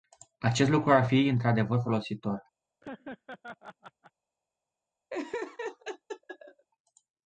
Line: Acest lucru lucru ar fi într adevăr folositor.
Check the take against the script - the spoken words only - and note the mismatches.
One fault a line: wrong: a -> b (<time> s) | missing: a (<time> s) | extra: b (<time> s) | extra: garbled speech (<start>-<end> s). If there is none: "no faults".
missing: lucru (0.9 s)